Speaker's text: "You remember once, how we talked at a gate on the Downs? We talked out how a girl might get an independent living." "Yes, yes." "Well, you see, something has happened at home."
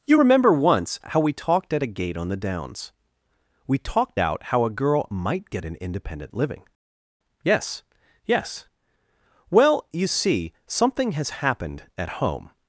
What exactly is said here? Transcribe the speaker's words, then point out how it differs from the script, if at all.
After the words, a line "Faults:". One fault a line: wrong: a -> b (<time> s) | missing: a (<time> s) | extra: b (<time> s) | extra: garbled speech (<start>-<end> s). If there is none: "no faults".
"You remember once, how we talked at a gate on the Downs? We talked out how a girl might get an independent living." "Yes, yes." "Well, you see, something has happened at home."
Faults:
no faults